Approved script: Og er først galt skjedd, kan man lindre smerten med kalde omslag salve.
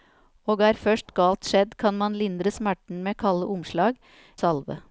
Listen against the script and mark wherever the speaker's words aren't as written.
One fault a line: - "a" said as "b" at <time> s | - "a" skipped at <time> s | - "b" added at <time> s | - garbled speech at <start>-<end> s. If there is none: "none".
none